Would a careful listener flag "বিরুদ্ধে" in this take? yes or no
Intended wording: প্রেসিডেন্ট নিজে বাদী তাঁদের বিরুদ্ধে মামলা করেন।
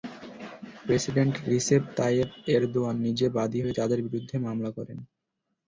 no